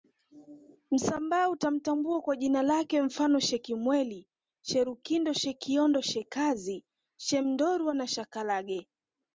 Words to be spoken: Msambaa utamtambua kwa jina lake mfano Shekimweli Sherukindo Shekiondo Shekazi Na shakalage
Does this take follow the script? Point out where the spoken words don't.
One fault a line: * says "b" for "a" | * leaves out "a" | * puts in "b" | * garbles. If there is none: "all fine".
* puts in "Shemndorwa"